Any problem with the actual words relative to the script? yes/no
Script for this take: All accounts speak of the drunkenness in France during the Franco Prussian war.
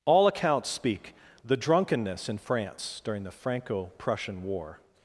yes